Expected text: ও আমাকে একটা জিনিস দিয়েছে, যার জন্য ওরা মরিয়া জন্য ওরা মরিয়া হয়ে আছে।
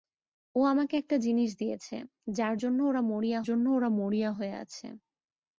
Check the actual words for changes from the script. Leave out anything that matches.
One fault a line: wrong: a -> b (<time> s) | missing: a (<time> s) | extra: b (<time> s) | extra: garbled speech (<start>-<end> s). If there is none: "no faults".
no faults